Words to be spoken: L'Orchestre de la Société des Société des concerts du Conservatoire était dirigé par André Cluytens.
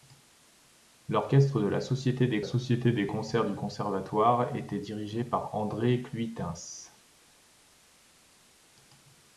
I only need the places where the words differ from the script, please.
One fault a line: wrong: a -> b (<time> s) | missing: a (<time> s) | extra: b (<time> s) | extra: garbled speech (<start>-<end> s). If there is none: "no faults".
no faults